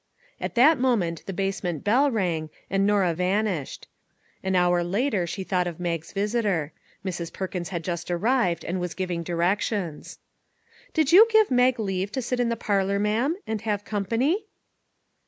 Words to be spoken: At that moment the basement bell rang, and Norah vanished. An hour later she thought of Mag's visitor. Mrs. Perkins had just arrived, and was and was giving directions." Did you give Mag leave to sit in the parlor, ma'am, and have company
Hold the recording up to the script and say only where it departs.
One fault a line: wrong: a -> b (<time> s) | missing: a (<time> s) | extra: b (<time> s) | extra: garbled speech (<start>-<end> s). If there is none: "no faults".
missing: and was (8.9 s)